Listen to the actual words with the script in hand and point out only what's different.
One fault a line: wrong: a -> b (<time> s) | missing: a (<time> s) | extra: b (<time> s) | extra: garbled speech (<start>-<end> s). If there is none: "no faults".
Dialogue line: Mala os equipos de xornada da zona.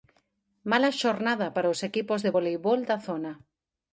extra: xornada para (1.0 s)
wrong: xornada -> voleibol (2.3 s)